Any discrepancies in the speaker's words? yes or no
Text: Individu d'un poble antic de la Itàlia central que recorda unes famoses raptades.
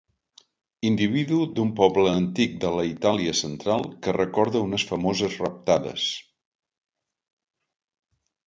no